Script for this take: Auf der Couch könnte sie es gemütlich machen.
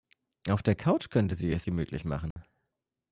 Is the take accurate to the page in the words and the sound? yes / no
no